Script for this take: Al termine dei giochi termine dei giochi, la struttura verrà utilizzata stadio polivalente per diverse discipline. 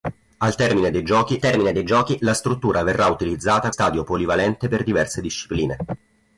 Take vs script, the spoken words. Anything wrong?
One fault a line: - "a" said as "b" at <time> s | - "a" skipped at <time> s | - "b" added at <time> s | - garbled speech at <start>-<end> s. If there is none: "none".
none